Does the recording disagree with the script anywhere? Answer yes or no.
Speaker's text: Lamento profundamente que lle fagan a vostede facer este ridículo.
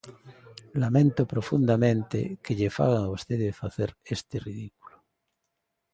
no